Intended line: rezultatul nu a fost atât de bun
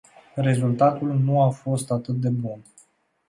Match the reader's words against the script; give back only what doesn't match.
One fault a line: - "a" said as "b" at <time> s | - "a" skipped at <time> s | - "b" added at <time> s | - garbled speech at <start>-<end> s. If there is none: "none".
none